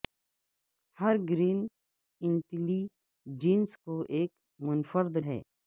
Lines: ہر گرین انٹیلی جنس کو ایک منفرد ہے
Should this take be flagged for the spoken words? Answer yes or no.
no